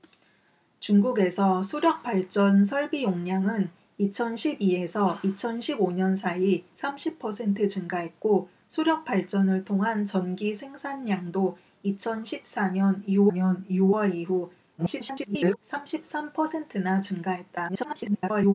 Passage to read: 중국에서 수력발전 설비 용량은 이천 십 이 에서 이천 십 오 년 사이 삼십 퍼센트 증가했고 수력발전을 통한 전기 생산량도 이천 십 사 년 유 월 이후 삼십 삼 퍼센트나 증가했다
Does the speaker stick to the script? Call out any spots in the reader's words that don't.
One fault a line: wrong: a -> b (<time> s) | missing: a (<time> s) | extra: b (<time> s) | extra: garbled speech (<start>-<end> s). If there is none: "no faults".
extra: 년 유 (13.3 s)
extra: garbled speech (14.8-15.6 s)
extra: garbled speech (17.7-18.5 s)